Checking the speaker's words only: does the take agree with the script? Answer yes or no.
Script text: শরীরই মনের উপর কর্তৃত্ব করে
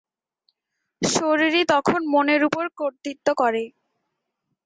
no